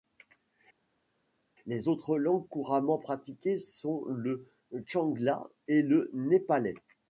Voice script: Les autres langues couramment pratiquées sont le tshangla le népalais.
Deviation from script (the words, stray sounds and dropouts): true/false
true